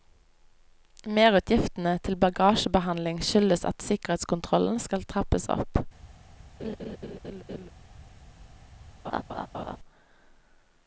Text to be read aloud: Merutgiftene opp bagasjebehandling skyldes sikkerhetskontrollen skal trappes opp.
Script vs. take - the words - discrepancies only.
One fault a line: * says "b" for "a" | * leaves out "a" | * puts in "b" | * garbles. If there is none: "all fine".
* says "til" for "opp"
* puts in "at"